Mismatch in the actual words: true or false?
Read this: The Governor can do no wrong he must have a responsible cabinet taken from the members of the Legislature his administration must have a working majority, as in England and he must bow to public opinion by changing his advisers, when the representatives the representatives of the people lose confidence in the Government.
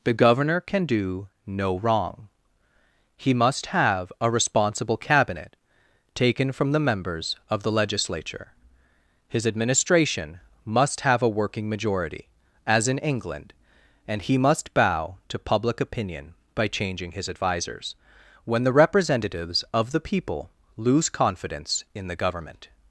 true